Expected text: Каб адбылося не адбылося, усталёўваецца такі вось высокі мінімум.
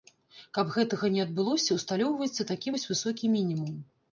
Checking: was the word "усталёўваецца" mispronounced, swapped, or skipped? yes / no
no